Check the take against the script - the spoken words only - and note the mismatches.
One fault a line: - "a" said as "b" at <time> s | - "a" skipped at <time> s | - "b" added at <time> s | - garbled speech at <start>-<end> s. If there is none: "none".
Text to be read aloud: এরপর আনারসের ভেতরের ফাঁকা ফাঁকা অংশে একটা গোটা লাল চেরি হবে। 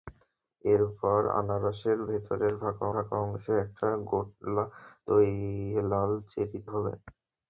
none